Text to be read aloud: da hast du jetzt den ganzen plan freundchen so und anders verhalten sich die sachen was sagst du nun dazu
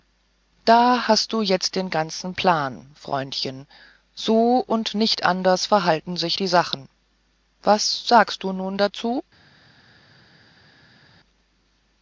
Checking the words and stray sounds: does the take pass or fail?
fail